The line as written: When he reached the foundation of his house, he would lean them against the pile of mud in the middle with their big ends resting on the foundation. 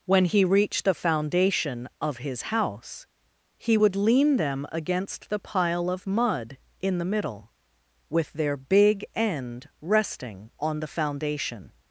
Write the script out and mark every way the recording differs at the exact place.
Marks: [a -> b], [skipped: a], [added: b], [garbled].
When he reached the foundation of his house, he would lean them against the pile of mud in the middle with their big [ends -> end] resting on the foundation.